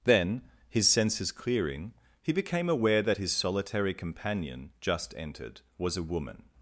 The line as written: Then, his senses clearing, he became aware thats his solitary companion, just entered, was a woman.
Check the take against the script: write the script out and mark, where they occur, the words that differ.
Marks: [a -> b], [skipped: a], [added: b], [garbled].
Then, his senses clearing, he became aware [thats -> that] his solitary companion, just entered, was a woman.